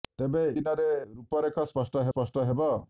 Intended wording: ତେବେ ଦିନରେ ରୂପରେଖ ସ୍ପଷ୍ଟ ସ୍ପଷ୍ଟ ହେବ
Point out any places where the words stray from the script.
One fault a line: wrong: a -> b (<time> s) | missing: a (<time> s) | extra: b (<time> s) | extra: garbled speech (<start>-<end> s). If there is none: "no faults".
no faults